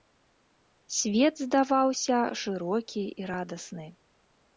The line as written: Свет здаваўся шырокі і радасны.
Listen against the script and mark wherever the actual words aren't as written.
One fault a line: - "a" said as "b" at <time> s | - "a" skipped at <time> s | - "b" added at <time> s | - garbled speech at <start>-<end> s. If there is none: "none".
none